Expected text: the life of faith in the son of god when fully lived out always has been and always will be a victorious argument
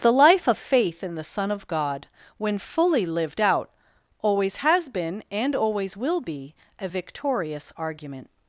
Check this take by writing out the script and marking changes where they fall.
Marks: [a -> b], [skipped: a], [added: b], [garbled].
the life of faith in the son of god when fully lived out always has been and always will be a victorious argument